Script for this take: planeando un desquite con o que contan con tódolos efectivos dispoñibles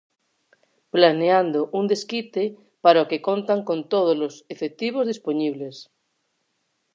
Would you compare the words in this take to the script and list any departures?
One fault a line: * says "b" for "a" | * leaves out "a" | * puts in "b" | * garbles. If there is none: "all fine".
* says "para" for "con"